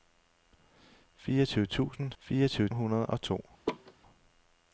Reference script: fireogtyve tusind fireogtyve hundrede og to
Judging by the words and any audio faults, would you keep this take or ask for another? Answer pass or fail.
fail